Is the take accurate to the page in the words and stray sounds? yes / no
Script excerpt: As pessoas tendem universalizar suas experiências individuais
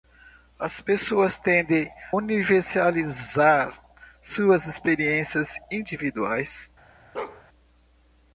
no